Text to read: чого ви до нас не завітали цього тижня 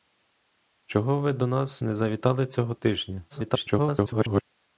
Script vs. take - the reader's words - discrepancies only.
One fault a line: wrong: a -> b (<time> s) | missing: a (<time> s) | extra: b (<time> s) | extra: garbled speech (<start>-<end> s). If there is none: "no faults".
extra: garbled speech (3.3-4.4 s)